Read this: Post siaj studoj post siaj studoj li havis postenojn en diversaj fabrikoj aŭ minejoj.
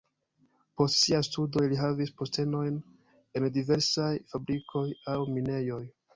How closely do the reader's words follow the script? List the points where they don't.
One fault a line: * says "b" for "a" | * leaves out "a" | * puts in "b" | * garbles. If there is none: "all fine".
* leaves out "post siaj studoj"